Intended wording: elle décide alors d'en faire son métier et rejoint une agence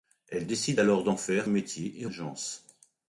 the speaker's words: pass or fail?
fail